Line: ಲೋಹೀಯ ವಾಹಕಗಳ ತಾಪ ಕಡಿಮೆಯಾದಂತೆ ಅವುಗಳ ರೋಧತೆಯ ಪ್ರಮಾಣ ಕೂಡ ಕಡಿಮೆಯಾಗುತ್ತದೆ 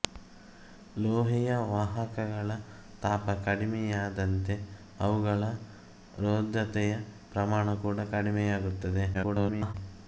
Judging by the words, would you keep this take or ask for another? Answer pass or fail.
fail